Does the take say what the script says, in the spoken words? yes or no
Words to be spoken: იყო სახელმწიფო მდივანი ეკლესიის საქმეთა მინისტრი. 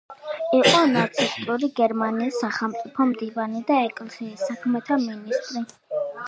no